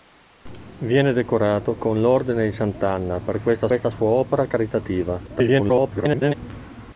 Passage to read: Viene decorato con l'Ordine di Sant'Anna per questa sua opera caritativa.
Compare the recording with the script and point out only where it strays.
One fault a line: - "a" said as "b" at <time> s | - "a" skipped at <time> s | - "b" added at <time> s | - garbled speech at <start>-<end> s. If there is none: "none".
- "questa" added at 3.7 s
- garbled speech at 5.3-6.3 s